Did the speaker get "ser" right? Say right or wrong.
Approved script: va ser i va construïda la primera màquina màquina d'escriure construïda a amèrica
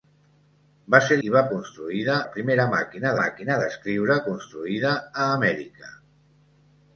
right